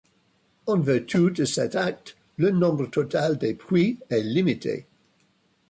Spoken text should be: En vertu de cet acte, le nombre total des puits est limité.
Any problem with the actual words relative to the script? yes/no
no